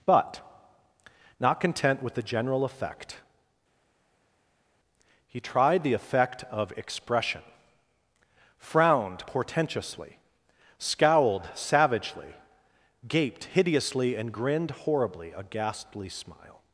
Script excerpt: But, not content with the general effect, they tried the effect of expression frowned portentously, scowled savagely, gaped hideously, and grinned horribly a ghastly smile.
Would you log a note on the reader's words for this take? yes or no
yes